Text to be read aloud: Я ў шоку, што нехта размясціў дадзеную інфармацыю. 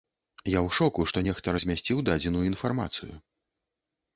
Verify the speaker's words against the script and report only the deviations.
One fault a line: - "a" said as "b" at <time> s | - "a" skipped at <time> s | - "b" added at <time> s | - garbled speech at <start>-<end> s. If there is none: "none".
none